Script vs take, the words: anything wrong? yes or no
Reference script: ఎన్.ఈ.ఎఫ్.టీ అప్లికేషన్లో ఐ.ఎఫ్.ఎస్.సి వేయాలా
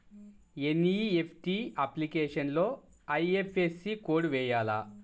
yes